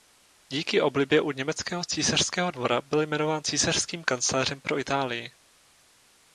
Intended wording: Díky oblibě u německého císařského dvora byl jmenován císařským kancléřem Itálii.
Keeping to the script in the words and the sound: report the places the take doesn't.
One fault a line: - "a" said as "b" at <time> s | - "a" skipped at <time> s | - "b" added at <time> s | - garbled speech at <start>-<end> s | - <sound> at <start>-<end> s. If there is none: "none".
- "pro" added at 4.6 s